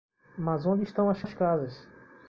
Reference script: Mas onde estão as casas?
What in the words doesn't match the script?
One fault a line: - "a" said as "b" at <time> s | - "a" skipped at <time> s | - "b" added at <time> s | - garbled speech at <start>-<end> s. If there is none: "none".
- "as" added at 1.2 s